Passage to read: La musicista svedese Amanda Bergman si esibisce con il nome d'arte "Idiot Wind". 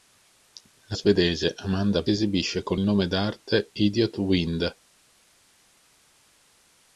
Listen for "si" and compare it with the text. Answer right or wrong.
wrong